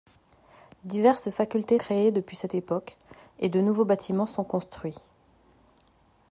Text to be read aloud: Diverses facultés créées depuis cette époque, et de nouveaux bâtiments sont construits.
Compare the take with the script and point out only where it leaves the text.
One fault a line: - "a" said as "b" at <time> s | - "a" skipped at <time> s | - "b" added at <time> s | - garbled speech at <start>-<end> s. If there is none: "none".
none